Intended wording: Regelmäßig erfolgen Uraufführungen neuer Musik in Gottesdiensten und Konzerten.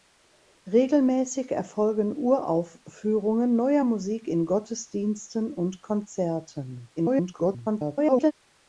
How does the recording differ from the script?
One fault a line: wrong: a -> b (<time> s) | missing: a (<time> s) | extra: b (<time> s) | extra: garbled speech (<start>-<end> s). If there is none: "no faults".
extra: garbled speech (7.0-8.3 s)